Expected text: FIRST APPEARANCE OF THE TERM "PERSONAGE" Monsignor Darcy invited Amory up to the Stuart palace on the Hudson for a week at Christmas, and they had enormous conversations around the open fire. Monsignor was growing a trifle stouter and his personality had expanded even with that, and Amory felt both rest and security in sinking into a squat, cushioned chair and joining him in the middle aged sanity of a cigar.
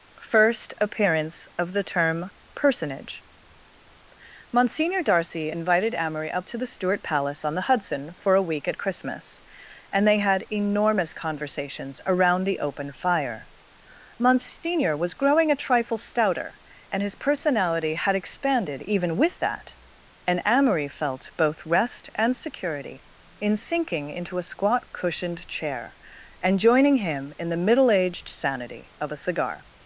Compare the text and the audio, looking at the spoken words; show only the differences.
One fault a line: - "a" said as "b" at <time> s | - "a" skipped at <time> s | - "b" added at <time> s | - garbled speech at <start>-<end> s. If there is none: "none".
none